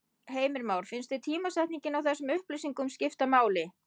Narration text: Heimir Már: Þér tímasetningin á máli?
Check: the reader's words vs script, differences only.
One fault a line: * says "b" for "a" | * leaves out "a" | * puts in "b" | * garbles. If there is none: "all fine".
* puts in "Finnst"
* puts in "þessum upplýsingum skipta"